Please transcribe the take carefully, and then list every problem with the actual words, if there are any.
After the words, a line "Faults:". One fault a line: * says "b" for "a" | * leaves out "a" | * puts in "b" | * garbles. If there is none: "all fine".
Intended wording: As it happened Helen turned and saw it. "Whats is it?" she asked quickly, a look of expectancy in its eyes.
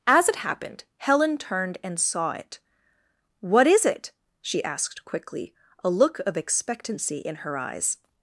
As it happened Helen turned and saw it. "What is it?" she asked quickly, a look of expectancy in her eyes.
Faults:
* says "What" for "Whats"
* says "her" for "its"